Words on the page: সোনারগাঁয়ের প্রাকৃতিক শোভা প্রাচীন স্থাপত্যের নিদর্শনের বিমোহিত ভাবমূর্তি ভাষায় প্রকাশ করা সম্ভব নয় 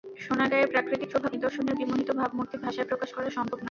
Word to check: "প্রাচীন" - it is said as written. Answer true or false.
false